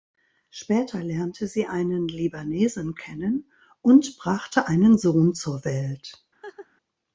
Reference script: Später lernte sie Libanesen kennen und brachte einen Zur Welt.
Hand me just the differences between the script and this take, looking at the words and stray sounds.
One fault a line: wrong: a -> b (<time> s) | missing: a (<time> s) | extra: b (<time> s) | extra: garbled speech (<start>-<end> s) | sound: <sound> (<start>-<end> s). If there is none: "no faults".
extra: einen (1.7 s)
extra: Sohn (5.0 s)
sound: laugh (6.4-6.7 s)